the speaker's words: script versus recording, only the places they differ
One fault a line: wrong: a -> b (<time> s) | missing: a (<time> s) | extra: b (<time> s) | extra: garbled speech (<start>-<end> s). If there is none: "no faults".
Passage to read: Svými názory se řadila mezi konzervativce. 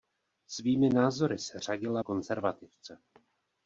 missing: mezi (2.0 s)